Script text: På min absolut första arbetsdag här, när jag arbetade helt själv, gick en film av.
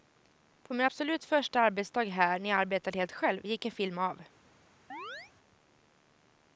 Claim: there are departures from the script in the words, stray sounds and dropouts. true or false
true